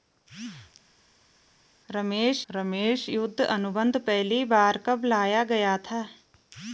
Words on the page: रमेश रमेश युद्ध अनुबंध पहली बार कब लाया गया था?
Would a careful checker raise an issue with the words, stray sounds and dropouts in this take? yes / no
no